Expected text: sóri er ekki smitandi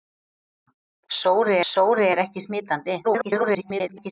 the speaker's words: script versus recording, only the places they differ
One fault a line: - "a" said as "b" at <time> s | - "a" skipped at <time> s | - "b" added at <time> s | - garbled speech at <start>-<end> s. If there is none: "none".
- "sóri" added at 1.7 s
- garbled speech at 3.0-4.1 s